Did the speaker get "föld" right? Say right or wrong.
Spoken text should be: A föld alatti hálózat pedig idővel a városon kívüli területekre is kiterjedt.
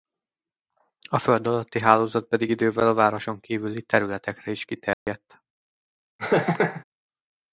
right